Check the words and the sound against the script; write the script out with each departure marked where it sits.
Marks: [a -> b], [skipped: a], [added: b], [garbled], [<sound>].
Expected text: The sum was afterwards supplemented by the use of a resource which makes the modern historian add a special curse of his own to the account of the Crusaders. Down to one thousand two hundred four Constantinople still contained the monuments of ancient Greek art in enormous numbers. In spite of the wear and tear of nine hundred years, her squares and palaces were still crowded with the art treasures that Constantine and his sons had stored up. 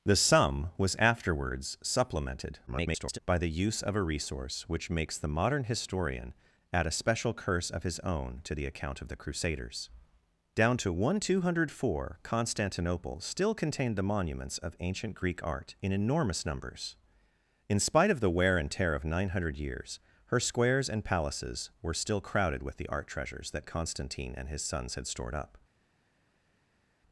The sum was afterwards supplemented [garbled] by the use of a resource which makes the modern historian add a special curse of his own to the account of the Crusaders. Down to one thousand two hundred four Constantinople still contained the monuments of ancient Greek art in enormous numbers. In spite of the wear and tear of nine hundred years, her squares and palaces were still crowded with the art treasures that Constantine and his sons had stored up.